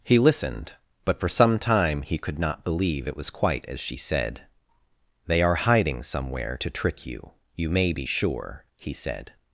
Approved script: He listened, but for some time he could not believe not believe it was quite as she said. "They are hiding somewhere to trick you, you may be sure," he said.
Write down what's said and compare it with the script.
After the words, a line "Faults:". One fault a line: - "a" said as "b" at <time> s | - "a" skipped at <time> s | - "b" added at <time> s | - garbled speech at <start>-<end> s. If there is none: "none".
He listened, but for some time he could not believe it was quite as she said. "They are hiding somewhere to trick you, you may be sure," he said.
Faults:
- "not believe" skipped at 3.1 s